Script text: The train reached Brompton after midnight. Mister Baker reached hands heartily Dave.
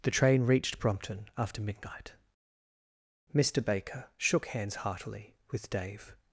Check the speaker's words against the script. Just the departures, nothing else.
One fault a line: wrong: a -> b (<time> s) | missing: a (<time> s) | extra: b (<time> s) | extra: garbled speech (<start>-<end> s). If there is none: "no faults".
wrong: reached -> shook (4.2 s)
extra: with (5.5 s)